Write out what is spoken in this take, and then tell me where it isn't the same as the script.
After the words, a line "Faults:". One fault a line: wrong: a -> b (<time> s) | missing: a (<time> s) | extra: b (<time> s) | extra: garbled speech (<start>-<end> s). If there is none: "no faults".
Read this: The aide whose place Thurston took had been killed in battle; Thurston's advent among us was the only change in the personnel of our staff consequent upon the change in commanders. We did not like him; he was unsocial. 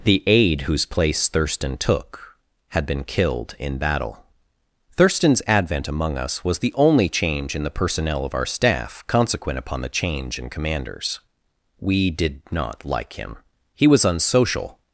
The aide whose place Thurston took had been killed in battle; Thurston's advent among us was the only change in the personnel of our staff consequent upon the change in commanders. We did not like him; he was unsocial.
Faults:
no faults